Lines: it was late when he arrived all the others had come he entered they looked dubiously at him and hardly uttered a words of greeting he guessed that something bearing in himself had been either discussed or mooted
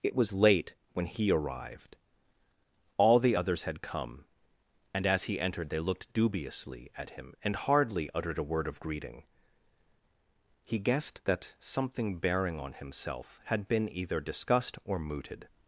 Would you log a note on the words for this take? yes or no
yes